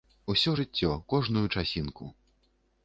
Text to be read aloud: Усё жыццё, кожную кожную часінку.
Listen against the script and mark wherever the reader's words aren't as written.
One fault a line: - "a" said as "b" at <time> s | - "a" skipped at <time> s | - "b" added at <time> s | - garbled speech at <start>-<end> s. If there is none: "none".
- "кожную" skipped at 1.5 s